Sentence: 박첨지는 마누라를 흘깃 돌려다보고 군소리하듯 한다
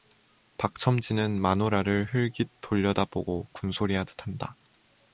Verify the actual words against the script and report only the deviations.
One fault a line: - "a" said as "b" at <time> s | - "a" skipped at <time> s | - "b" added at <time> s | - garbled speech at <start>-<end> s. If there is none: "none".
none